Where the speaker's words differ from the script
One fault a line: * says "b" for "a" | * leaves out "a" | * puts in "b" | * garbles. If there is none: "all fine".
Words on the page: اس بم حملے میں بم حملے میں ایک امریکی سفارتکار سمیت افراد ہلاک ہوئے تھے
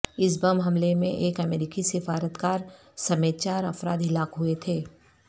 * leaves out "بم حملے میں"
* puts in "چار"